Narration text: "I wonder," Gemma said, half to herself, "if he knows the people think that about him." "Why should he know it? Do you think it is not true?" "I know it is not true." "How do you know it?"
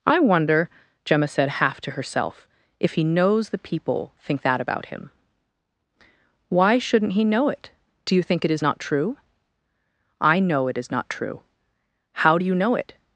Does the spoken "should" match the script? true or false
false